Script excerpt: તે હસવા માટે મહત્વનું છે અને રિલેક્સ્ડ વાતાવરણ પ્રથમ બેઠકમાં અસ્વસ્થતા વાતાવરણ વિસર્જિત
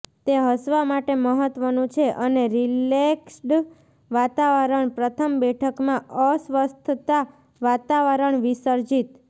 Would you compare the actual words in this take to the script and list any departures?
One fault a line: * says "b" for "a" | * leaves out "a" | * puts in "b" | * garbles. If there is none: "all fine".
all fine